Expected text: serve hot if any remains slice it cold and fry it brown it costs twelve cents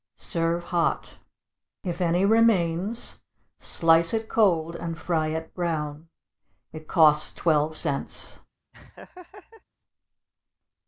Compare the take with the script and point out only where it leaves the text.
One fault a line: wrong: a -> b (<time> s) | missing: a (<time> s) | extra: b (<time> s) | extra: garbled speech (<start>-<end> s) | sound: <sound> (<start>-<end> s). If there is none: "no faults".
sound: laugh (8.7-9.6 s)